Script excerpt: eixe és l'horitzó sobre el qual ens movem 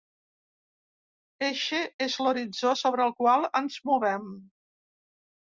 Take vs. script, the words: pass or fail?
pass